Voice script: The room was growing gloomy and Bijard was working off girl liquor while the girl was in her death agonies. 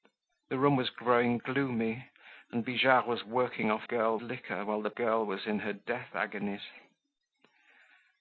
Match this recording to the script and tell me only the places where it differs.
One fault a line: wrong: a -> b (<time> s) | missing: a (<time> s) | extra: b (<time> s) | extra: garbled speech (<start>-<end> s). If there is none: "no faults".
no faults